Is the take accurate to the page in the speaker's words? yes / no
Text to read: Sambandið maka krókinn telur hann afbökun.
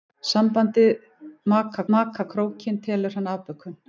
no